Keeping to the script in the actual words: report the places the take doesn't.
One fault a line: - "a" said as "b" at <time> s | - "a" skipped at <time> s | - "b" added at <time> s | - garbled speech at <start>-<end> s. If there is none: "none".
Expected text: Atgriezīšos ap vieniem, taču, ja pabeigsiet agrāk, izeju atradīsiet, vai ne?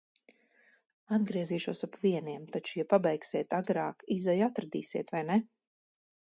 none